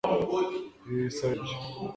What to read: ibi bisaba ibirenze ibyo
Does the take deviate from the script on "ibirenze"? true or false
true